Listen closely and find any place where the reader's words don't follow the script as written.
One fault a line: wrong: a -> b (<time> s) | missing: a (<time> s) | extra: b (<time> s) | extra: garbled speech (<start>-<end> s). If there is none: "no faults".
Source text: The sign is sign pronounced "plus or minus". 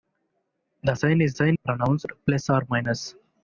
no faults